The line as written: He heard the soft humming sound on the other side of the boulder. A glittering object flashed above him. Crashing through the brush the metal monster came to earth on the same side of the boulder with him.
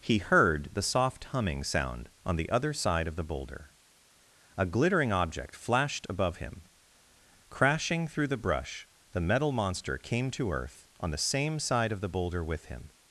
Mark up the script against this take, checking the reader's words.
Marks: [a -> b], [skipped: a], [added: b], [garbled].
He heard the soft humming sound on the other side of the boulder. A glittering object flashed above him. Crashing through the brush the metal monster came to earth on the same side of the boulder with him.